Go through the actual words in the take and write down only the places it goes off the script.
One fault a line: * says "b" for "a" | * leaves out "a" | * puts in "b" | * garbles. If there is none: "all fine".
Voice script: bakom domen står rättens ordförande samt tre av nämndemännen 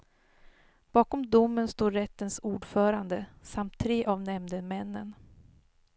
all fine